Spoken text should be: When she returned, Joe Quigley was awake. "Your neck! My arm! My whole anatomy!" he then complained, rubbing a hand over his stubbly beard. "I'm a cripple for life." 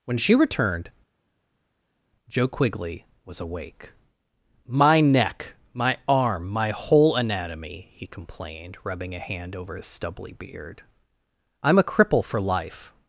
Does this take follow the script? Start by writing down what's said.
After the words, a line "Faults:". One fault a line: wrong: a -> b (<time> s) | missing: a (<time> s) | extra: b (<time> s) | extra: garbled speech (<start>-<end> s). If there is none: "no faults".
When she returned, Joe Quigley was awake. "My neck! My arm! My whole anatomy!" he complained, rubbing a hand over his stubbly beard. "I'm a cripple for life."
Faults:
wrong: Your -> My (4.6 s)
missing: then (8.1 s)